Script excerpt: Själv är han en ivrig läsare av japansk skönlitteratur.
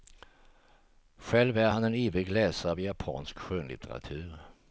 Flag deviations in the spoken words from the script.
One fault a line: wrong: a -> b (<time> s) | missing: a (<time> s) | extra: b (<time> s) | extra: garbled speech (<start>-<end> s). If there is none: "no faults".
no faults